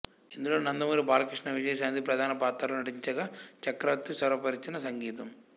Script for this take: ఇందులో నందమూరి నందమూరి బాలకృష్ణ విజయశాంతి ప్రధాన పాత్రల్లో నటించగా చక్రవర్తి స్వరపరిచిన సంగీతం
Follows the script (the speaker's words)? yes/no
no